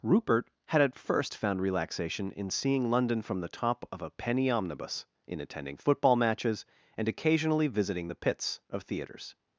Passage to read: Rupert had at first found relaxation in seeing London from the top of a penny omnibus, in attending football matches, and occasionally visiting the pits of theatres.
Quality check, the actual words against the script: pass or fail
pass